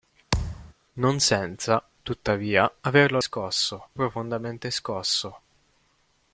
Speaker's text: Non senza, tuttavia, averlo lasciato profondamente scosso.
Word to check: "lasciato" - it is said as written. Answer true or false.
false